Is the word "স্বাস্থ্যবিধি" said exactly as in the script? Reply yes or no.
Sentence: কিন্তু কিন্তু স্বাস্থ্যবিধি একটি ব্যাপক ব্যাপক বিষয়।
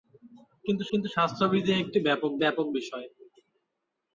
yes